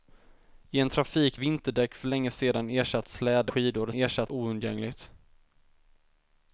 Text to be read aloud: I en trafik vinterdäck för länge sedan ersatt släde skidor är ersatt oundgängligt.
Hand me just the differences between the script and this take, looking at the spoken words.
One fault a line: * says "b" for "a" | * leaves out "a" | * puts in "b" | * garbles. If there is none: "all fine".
all fine